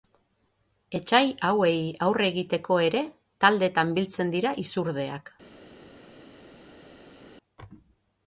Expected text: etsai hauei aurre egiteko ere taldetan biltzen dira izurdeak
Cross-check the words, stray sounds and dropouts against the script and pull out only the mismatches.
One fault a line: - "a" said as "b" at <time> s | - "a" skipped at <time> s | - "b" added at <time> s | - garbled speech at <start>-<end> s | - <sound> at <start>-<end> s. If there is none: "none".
none